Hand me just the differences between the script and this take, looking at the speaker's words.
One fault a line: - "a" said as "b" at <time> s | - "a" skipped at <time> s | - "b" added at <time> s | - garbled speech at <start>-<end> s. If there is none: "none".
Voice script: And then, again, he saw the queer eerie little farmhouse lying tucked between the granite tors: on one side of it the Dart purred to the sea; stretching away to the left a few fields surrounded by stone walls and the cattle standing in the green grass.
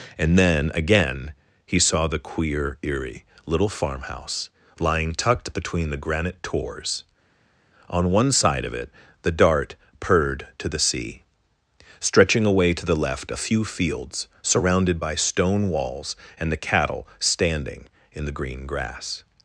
none